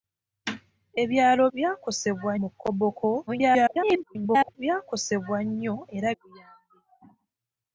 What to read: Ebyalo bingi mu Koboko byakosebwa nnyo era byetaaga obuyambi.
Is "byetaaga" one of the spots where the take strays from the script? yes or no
yes